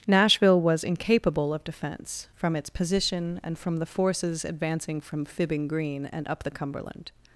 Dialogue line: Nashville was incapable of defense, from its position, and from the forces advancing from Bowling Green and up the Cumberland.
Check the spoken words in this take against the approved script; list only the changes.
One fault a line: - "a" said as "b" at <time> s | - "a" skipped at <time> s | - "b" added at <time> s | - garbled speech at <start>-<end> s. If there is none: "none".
- "Bowling" said as "Fibbing" at 5.2 s